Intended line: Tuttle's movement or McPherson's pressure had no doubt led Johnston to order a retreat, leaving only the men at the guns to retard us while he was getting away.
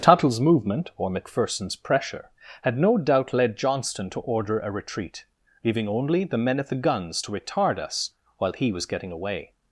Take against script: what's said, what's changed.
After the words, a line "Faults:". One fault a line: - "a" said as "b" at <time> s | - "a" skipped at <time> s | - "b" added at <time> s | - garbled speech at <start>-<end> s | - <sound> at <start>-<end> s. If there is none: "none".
Tuttle's movement or McPherson's pressure had no doubt led Johnston to order a retreat, leaving only the men at the guns to retard us while he was getting away.
Faults:
none